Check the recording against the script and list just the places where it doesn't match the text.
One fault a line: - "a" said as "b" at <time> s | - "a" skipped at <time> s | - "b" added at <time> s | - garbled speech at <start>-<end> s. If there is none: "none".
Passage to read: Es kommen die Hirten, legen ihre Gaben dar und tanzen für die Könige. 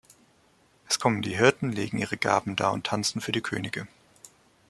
none